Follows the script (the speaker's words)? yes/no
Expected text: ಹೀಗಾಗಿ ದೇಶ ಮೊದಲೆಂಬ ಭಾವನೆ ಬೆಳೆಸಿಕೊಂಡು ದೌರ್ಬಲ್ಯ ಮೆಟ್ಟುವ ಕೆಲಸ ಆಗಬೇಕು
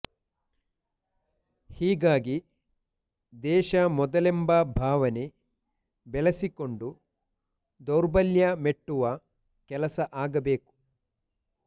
yes